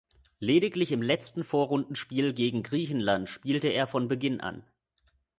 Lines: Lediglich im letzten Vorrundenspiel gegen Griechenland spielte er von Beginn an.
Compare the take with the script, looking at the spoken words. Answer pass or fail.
pass